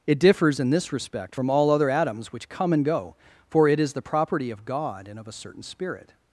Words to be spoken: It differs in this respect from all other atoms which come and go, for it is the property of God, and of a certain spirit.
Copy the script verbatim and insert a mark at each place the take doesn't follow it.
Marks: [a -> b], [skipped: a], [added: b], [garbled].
It differs in this respect from all other atoms which come and go, for it is the property of God, and of a certain spirit.